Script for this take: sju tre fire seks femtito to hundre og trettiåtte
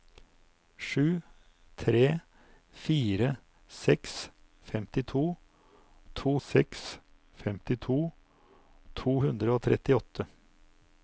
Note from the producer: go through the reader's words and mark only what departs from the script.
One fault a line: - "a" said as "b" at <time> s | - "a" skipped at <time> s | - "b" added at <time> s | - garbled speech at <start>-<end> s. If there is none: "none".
- "seks femtito to" added at 6.5 s